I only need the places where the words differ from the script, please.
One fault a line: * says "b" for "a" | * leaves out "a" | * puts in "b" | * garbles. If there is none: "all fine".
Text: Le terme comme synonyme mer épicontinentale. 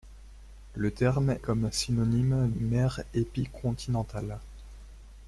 all fine